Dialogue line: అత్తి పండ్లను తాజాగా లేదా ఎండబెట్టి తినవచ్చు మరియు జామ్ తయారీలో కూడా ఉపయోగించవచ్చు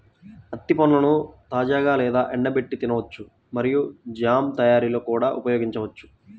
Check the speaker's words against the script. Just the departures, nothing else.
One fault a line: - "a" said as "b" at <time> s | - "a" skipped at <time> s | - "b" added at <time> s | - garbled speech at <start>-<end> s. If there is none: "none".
none